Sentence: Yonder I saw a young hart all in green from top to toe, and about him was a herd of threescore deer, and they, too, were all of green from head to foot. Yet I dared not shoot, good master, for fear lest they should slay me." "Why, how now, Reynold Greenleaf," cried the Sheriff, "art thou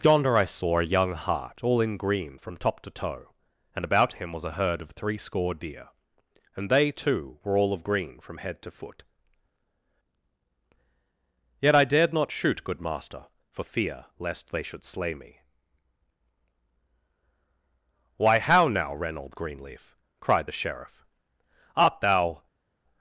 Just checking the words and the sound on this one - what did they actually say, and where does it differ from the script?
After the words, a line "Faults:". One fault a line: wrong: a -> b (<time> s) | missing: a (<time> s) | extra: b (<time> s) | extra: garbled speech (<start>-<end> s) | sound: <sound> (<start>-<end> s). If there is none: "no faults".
Yonder I saw a young hart all in green from top to toe, and about him was a herd of threescore deer, and they, too, were all of green from head to foot. Yet I dared not shoot, good master, for fear lest they should slay me." "Why, how now, Reynold Greenleaf," cried the Sheriff, "art thou
Faults:
no faults